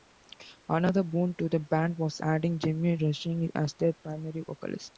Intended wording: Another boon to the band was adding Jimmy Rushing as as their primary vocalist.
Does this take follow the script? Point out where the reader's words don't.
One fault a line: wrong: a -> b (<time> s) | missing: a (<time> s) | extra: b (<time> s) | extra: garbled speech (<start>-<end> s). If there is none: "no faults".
missing: as (3.7 s)